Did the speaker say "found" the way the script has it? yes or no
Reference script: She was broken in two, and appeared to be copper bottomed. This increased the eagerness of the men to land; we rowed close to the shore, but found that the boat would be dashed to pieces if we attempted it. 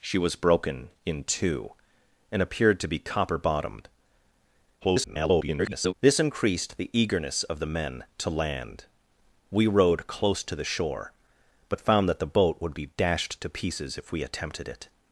yes